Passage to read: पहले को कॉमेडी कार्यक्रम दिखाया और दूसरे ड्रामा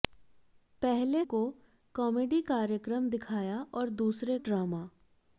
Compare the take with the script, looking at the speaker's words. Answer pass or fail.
pass